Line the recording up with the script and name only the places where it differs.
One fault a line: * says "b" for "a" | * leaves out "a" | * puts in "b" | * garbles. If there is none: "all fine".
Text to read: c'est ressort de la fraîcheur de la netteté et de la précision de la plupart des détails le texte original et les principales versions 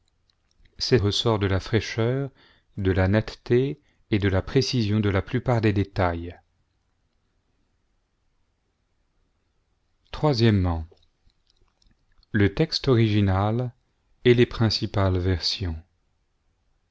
all fine